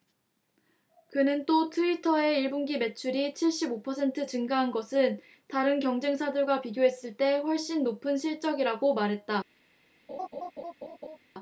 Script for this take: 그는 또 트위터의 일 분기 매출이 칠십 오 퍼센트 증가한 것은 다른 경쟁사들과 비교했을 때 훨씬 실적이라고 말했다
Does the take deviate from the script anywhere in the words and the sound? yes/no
yes